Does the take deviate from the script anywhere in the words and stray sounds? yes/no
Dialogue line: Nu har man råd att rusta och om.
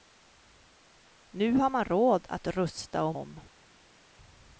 no